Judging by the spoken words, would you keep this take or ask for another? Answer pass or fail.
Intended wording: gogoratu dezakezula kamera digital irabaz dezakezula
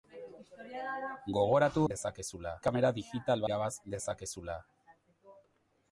pass